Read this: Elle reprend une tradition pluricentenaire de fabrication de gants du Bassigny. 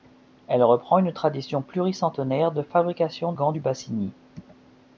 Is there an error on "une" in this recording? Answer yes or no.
no